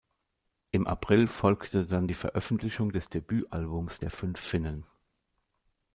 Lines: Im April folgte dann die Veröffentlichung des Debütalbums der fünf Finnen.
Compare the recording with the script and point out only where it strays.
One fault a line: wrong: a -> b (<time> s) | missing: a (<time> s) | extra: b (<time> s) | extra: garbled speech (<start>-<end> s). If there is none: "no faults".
no faults